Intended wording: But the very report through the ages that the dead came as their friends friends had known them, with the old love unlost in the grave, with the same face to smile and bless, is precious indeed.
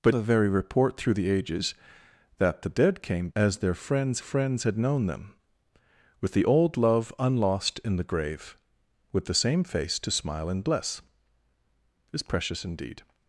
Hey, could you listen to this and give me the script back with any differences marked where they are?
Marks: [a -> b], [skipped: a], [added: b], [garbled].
But the very report through the ages that the dead came as their friends friends had known them, with the old love unlost in the grave, with the same face to smile and bless, is precious indeed.